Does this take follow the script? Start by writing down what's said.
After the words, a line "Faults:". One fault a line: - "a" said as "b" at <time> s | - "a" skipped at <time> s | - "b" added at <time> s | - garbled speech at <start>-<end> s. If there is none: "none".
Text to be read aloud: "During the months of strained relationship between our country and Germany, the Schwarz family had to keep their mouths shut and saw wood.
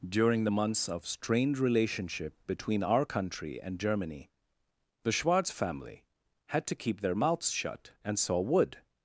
"During the months of strained relationship between our country and Germany, the Schwarz family had to keep their mouths shut and saw wood.
Faults:
none